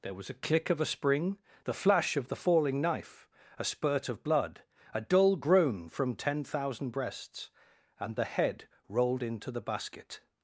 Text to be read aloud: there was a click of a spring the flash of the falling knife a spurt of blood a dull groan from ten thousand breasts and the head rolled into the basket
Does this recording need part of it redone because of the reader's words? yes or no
no